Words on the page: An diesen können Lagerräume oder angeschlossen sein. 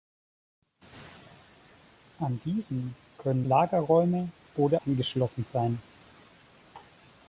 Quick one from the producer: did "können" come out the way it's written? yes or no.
yes